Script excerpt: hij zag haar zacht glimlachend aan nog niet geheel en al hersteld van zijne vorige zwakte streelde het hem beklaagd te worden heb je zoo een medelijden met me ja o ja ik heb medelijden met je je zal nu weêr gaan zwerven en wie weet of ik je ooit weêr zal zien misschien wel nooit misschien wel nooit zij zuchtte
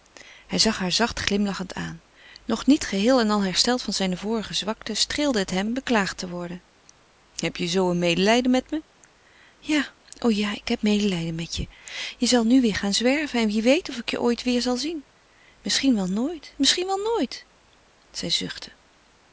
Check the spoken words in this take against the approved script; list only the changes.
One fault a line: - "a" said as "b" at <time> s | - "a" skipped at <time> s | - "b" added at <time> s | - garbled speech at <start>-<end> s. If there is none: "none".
none